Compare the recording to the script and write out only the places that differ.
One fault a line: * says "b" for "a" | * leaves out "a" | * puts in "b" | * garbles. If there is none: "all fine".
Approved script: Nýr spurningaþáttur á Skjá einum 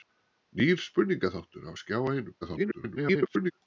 * garbles